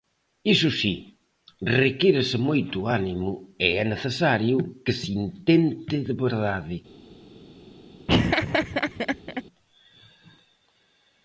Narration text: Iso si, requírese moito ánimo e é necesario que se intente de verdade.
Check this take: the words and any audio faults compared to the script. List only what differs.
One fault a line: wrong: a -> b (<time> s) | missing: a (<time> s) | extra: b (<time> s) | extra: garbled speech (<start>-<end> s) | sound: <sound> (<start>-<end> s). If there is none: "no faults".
sound: laugh (8.1-9.4 s)